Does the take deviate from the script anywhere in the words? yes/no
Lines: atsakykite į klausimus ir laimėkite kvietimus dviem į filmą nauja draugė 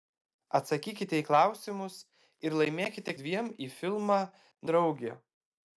yes